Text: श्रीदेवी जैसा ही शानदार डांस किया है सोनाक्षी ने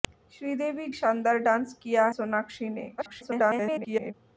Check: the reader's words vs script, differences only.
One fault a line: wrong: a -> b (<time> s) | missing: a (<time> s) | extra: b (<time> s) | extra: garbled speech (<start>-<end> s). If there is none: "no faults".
missing: जैसा ही (0.9 s)
missing: है (2.1 s)
extra: garbled speech (3.0-4.1 s)